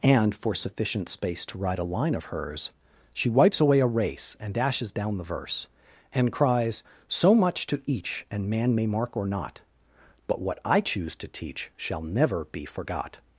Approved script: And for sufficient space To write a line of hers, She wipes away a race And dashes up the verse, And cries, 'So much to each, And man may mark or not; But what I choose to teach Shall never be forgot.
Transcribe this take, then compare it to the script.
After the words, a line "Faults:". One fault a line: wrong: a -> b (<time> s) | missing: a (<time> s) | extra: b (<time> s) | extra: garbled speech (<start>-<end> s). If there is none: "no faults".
And for sufficient space To write a line of hers, She wipes away a race And dashes down the verse, And cries, 'So much to each, And man may mark or not; But what I choose to teach Shall never be forgot.
Faults:
wrong: up -> down (4.9 s)